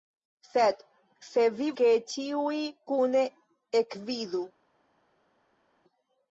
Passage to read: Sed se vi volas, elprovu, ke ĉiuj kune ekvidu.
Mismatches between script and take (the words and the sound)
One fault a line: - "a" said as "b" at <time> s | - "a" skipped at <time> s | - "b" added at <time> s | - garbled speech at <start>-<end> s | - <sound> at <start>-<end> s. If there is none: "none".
- "volas elprovu" skipped at 1.7 s